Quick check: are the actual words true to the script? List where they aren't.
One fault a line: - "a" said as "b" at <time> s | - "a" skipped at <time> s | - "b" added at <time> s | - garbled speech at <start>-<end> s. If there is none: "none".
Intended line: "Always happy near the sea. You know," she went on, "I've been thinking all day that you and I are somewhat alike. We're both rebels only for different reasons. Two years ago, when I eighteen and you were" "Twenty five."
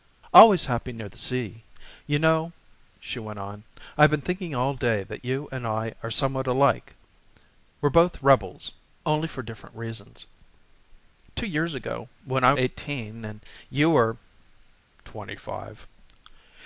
none